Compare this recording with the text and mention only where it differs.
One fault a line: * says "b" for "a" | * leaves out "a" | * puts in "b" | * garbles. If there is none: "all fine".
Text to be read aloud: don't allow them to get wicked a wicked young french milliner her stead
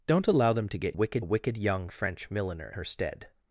all fine